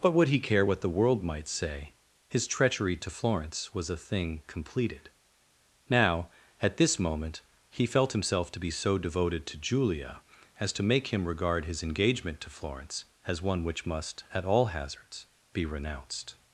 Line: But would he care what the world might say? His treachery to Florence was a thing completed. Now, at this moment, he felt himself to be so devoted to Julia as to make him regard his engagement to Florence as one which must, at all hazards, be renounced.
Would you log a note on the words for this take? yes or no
no